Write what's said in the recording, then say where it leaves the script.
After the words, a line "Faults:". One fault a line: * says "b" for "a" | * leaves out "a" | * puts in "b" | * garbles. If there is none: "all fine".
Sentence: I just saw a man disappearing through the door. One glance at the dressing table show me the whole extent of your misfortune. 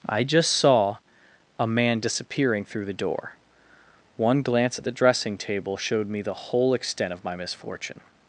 I just saw a man disappearing through the door. One glance at the dressing table showed me the whole extent of my misfortune.
Faults:
* says "showed" for "show"
* says "my" for "your"